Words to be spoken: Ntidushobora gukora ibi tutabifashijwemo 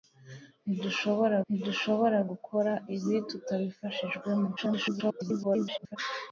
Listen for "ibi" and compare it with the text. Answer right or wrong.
right